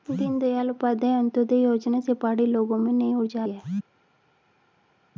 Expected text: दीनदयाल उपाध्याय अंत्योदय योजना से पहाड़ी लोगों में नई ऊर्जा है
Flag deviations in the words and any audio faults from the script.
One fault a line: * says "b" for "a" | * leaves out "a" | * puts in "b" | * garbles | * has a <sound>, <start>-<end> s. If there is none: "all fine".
all fine